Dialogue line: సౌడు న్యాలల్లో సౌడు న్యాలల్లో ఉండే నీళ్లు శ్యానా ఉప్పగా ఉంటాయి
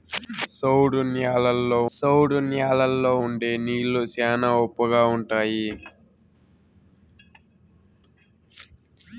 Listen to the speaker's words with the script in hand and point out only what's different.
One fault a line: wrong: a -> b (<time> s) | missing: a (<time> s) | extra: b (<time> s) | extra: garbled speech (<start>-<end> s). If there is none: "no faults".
no faults